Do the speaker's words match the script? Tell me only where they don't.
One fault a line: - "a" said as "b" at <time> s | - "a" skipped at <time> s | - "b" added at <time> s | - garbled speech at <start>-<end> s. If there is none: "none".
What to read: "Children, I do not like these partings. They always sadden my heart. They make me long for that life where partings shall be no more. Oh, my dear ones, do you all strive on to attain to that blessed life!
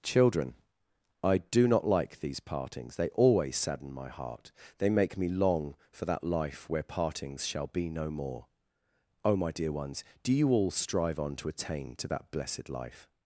none